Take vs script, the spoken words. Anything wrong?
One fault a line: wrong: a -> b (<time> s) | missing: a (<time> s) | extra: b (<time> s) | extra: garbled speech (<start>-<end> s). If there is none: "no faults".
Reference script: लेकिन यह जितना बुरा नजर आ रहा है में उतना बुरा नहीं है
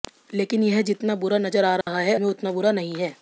no faults